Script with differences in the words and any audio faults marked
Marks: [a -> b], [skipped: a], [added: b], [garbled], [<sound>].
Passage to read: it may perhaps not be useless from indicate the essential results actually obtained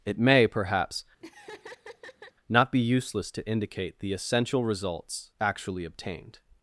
it may perhaps [laugh] not be useless [from -> to] indicate the essential results actually obtained